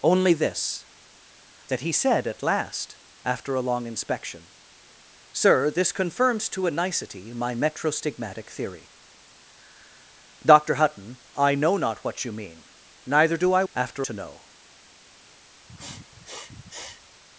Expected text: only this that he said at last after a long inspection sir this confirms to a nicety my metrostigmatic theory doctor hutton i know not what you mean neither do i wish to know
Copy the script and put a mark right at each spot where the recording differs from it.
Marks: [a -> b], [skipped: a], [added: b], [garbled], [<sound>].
only this that he said at last after a long inspection sir this confirms to a nicety my metrostigmatic theory doctor hutton i know not what you mean neither do i [wish -> after] to know [sniff]